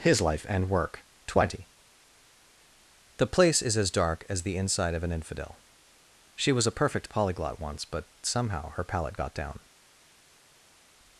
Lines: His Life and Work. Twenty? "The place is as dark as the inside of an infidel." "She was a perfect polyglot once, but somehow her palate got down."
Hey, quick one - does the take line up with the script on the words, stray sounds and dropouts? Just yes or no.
yes